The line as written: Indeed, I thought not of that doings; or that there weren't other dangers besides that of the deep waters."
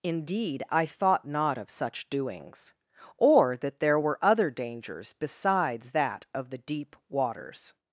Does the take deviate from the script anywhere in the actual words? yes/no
yes